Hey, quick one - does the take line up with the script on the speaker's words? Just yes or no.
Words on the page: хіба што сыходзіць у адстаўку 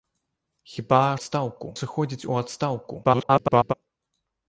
no